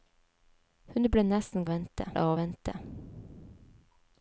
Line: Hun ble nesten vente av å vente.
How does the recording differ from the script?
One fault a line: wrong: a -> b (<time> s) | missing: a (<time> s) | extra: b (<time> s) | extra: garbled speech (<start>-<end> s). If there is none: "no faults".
no faults